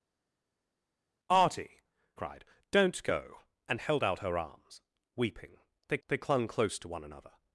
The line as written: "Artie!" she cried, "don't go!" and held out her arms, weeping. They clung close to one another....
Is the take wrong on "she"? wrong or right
wrong